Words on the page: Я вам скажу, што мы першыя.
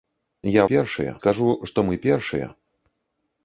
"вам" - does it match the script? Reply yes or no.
no